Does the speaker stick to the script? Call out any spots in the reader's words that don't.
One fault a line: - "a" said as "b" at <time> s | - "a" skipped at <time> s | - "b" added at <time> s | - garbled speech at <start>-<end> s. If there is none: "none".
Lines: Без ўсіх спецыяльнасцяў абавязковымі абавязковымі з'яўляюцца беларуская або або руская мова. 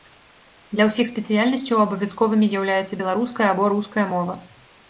- "Без" said as "Для" at 0.8 s
- "абавязковымі" skipped at 2.5 s
- "або" skipped at 3.7 s